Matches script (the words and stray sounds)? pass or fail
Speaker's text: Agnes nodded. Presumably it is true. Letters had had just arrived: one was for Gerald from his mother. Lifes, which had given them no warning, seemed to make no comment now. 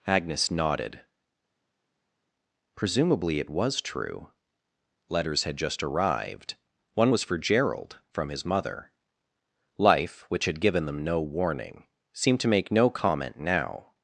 fail